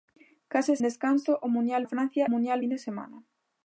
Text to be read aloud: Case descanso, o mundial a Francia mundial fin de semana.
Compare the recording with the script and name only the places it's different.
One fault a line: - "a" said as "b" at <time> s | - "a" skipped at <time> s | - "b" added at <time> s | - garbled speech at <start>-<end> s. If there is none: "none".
none